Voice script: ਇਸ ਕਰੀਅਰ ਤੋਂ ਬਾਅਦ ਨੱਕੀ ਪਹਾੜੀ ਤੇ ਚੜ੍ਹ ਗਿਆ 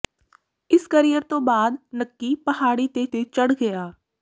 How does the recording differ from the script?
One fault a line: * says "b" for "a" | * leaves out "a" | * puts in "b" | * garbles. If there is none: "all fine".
* puts in "ਤੇ"